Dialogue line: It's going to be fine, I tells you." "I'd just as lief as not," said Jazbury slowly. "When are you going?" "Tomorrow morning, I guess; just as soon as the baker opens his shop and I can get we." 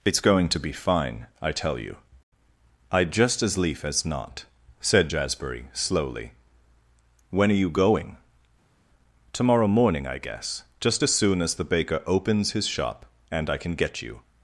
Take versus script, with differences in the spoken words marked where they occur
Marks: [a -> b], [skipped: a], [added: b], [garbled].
It's going to be fine, I [tells -> tell] you." "I'd just as lief as not," said Jazbury slowly. "When are you going?" "Tomorrow morning, I guess; just as soon as the baker opens his shop and I can get [we." -> you]